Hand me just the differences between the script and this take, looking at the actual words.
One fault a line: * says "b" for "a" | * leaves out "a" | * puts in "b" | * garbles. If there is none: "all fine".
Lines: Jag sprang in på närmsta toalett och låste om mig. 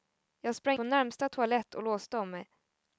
* leaves out "in"